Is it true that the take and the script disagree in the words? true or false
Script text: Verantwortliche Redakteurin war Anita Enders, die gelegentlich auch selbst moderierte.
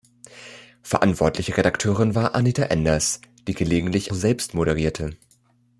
true